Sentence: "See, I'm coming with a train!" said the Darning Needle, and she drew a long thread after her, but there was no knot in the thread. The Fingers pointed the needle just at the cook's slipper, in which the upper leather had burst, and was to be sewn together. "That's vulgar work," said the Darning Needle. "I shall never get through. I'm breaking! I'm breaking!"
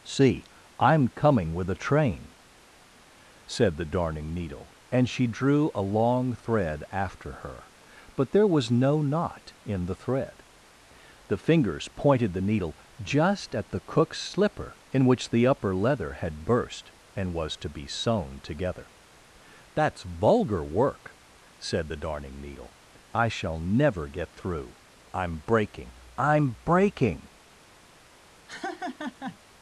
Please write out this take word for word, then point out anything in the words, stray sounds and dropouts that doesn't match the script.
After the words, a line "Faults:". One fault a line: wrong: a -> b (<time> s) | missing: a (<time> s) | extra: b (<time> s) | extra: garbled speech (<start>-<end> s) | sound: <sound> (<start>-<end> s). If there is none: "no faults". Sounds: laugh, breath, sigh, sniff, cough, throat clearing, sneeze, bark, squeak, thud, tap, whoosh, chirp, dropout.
"See, I'm coming with a train!" said the Darning Needle, and she drew a long thread after her, but there was no knot in the thread. The Fingers pointed the needle just at the cook's slipper, in which the upper leather had burst, and was to be sewn together. "That's vulgar work," said the Darning Needle. "I shall never get through. I'm breaking! I'm breaking!"
Faults:
sound: laugh (28.5-29.4 s)